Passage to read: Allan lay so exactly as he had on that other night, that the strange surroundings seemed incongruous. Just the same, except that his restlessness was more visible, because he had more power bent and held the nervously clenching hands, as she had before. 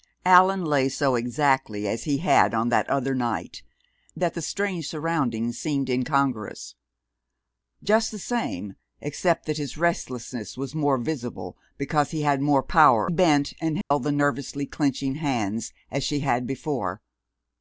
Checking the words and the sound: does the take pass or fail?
fail